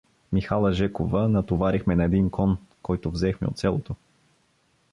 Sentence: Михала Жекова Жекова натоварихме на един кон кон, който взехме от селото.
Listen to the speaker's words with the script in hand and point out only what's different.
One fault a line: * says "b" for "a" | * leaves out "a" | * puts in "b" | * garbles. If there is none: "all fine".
* leaves out "Жекова"
* leaves out "кон"